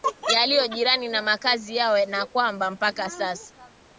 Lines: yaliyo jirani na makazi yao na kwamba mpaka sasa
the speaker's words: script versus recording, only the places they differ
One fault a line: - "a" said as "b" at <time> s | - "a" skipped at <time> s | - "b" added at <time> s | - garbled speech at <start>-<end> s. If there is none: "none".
none